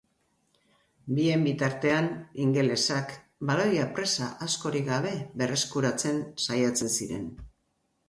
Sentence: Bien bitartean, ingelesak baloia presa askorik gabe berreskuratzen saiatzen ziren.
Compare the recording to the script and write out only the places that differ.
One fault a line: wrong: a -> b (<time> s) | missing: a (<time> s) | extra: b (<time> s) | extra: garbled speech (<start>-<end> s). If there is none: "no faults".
no faults